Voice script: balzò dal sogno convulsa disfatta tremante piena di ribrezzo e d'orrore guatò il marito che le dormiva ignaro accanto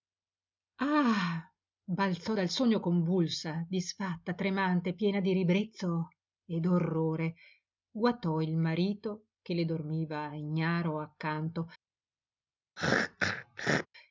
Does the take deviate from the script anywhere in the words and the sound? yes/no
yes